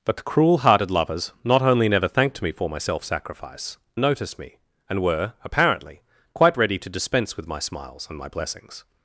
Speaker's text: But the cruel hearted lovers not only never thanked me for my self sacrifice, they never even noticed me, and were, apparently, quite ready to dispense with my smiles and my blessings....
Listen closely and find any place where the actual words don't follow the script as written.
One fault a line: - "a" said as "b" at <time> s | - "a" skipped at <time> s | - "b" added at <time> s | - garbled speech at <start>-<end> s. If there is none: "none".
- "they never even" skipped at 3.8 s